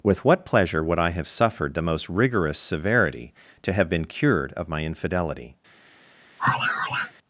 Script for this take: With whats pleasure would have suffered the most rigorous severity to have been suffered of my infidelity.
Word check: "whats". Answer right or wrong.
wrong